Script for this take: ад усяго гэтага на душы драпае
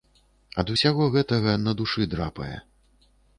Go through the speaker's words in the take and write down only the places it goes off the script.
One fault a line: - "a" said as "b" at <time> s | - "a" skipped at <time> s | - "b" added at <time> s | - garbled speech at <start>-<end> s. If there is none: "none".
none